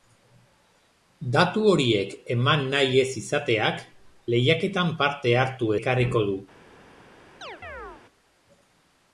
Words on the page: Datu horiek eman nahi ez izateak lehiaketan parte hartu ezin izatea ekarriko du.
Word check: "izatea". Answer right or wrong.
wrong